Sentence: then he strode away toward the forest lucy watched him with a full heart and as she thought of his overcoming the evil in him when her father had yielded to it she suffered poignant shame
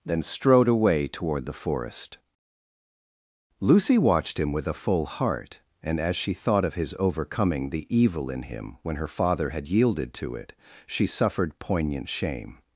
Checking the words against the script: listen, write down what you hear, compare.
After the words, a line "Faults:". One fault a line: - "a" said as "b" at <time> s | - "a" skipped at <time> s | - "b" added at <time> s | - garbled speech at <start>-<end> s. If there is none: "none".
then strode away toward the forest lucy watched him with a full heart and as she thought of his overcoming the evil in him when her father had yielded to it she suffered poignant shame
Faults:
- "he" skipped at 0.2 s